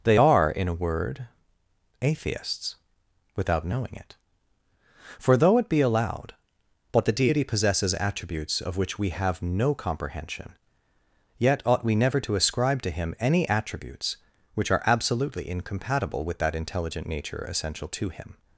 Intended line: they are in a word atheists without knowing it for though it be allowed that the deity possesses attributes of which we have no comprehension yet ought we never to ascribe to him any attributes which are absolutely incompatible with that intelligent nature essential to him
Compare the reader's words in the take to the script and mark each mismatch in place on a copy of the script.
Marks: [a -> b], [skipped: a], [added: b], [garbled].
they are in a word atheists without knowing it for though it be allowed [that -> but] the deity possesses attributes of which we have no comprehension yet ought we never to ascribe to him any attributes which are absolutely incompatible with that intelligent nature essential to him